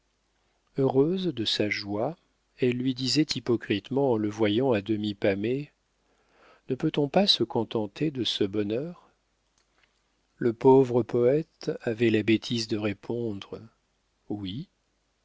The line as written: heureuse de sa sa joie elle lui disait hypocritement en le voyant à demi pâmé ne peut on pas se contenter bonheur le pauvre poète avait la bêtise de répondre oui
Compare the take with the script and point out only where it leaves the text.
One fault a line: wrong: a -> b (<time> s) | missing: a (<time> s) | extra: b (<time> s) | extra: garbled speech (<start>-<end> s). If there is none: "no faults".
missing: sa (1.7 s)
extra: de ce (8.1 s)